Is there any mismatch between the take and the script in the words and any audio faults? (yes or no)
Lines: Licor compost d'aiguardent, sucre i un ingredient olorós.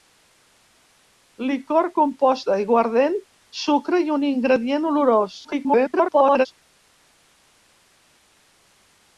yes